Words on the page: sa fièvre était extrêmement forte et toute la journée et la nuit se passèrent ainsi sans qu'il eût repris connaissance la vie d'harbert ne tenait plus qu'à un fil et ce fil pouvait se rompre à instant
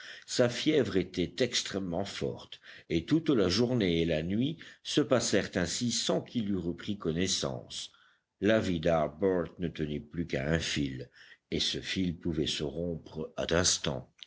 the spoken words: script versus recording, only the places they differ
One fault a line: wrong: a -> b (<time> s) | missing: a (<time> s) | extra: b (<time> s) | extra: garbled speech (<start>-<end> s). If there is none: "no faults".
no faults